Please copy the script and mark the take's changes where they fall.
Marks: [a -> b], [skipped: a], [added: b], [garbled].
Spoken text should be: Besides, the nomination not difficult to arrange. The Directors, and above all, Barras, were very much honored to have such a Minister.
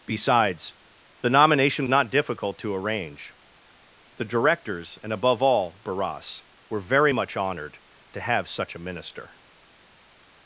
Besides, the nomination not difficult to arrange. The Directors, and above all, Barras, were very much honored to have such a Minister.